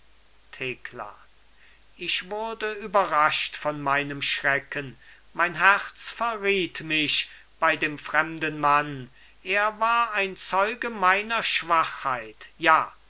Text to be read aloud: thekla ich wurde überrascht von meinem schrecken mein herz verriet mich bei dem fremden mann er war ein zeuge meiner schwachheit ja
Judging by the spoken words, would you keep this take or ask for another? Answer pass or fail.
pass